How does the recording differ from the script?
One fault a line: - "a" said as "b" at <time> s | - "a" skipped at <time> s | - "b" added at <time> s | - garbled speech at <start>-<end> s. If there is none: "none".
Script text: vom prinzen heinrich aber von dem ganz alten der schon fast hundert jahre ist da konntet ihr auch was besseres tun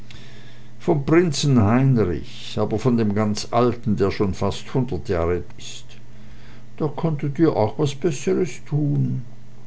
none